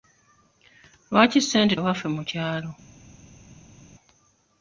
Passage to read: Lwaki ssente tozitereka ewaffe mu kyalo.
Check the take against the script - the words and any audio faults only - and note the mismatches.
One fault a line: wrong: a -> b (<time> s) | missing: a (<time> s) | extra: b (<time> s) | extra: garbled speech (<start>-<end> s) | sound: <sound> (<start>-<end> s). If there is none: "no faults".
missing: tozitereka (1.8 s)